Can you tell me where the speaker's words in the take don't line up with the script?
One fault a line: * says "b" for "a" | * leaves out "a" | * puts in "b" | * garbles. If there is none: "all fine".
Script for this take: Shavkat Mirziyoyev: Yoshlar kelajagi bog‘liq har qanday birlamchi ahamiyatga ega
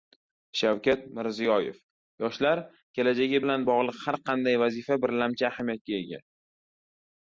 * puts in "bilan"
* puts in "vazifa"